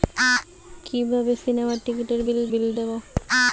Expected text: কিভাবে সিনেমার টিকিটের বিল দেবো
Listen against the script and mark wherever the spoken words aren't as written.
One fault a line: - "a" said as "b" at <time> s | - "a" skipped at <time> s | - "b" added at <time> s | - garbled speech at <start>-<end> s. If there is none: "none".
- "বিল" added at 2.5 s